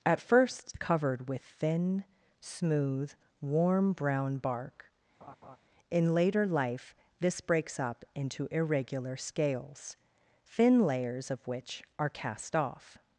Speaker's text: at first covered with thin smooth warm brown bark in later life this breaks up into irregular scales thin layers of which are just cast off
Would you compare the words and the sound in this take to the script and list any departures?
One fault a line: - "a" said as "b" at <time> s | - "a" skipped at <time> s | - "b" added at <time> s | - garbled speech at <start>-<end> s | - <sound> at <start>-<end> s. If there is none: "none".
- laugh at 5.2-5.6 s
- "just" skipped at 12.1 s